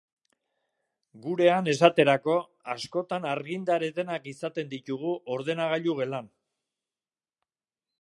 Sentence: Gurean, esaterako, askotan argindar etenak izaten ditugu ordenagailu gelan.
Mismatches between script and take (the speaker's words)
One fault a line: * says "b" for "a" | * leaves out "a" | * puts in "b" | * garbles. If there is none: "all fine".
all fine